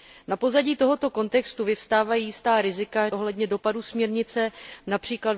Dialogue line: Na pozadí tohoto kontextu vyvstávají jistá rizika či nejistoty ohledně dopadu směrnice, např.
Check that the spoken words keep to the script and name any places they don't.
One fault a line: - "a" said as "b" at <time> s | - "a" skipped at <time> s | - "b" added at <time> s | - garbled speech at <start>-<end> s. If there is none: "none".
- "či nejistoty" skipped at 3.1 s